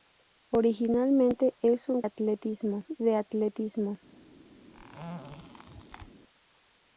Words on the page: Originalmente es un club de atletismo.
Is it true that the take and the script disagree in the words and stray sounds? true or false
true